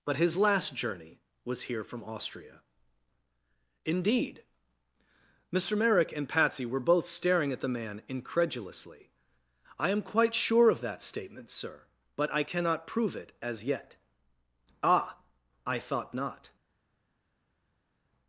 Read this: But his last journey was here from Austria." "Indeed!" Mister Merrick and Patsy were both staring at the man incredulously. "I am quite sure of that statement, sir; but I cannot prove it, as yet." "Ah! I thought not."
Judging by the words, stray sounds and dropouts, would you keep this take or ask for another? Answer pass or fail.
pass